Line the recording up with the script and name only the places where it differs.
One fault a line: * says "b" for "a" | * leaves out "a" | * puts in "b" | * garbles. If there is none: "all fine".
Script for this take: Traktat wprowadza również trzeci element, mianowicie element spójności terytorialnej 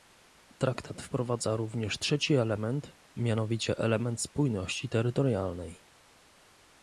all fine